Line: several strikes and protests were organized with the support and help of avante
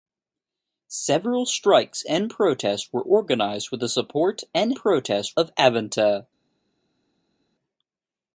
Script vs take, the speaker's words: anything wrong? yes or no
yes